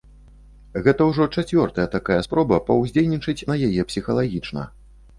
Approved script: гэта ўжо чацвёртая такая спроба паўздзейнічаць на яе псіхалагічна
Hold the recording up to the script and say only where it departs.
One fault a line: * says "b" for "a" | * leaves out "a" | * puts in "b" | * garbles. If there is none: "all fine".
all fine